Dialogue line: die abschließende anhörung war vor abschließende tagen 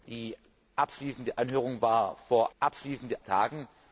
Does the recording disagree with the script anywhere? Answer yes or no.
no